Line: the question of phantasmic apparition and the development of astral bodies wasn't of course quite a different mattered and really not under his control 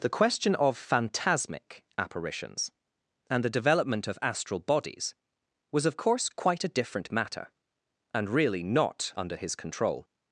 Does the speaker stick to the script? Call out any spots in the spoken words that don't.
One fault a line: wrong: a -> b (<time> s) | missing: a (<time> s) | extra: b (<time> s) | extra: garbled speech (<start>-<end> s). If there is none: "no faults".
wrong: apparition -> apparitions (1.9 s)
wrong: wasn't -> was (5.7 s)
wrong: mattered -> matter (7.1 s)